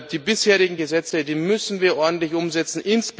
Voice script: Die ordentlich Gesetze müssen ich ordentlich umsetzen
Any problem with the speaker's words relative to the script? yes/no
yes